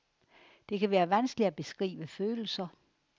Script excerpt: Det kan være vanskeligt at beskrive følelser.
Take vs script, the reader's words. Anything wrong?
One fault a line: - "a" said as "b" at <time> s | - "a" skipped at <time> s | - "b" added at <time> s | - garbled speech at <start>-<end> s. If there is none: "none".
none